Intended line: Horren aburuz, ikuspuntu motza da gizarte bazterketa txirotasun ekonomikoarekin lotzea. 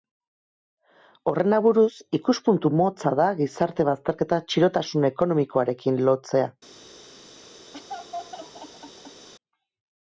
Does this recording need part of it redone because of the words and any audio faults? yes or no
yes